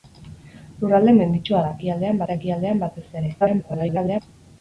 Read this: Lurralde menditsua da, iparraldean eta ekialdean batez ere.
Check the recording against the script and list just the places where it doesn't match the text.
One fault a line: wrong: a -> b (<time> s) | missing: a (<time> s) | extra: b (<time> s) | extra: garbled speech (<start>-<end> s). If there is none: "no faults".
wrong: iparraldean -> ekialdean (1.8 s)
extra: garbled speech (3.4-4.2 s)